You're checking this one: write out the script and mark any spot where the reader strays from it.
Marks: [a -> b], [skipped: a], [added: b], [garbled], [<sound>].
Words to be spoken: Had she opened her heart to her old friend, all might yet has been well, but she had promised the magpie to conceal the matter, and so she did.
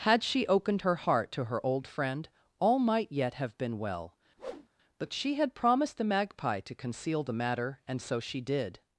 Had she opened her heart to her old friend, all might yet [has -> have] been well, [whoosh] but she had promised the magpie to conceal the matter, and so she did.